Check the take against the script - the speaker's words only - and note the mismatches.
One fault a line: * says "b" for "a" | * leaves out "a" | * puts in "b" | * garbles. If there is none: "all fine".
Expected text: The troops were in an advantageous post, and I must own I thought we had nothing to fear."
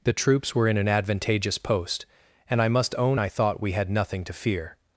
all fine